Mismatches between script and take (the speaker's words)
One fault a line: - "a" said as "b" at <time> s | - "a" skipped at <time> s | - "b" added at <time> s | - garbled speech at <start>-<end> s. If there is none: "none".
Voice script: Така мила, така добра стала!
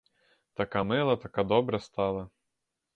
none